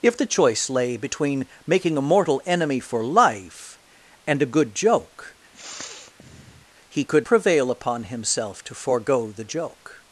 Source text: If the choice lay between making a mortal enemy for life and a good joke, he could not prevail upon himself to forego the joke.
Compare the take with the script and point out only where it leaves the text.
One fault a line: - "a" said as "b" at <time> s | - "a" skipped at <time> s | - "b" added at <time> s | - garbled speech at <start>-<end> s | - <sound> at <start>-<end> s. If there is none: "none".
- sniff at 5.5-6.7 s
- "not" skipped at 7.3 s